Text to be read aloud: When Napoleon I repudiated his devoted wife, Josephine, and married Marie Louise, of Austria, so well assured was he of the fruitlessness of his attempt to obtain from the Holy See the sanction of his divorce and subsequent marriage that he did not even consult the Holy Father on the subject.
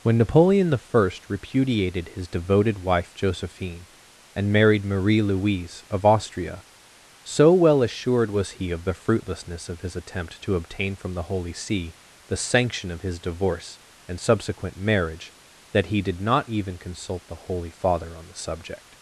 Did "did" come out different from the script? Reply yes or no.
no